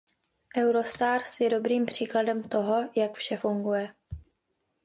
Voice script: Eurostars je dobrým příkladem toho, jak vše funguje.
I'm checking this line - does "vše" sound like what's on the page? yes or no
yes